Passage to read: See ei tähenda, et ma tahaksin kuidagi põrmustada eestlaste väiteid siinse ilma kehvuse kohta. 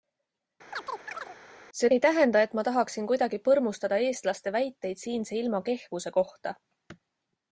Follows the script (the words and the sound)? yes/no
no